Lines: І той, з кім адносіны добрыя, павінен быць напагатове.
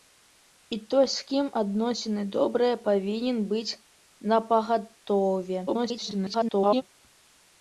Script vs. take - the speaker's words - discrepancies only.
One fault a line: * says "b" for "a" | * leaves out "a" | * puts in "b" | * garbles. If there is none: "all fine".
* garbles